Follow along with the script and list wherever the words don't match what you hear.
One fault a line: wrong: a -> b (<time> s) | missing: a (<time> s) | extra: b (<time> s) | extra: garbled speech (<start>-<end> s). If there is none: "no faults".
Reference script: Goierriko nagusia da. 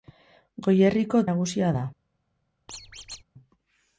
no faults